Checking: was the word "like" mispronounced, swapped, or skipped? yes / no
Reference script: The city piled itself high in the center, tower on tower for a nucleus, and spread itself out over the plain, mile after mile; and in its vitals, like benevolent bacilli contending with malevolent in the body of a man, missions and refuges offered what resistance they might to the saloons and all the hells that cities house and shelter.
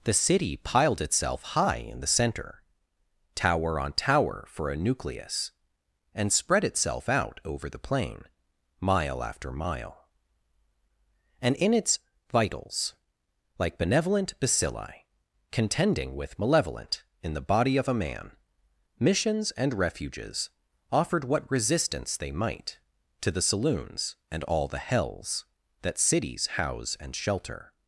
no